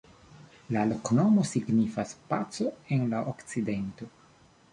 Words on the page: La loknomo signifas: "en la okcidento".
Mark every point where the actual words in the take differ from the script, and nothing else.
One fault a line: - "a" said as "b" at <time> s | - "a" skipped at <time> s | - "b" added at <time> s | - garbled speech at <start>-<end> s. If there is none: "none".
- "paco" added at 2.3 s